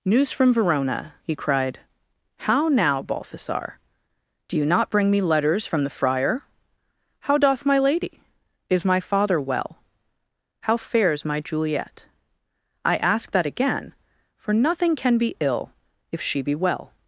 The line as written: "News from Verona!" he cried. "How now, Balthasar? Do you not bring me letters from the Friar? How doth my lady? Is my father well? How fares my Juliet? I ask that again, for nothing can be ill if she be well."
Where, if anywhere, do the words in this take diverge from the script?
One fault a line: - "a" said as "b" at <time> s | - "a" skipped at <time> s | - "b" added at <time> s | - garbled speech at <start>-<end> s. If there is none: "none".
none